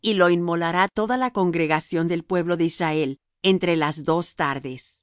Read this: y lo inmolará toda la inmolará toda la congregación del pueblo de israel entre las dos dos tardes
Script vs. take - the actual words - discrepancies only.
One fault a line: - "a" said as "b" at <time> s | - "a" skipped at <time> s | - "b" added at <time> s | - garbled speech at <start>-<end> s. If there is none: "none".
- "inmolará toda la" skipped at 1.3 s
- "dos" skipped at 4.3 s